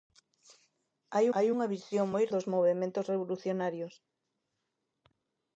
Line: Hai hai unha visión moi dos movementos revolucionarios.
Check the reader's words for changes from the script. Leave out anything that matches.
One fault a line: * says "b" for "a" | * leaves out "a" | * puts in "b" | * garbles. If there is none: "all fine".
all fine